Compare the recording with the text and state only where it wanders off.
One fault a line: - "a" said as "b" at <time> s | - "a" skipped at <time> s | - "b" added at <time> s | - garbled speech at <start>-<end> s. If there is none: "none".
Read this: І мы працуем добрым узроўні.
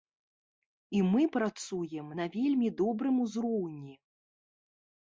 - "на вельмі" added at 2.2 s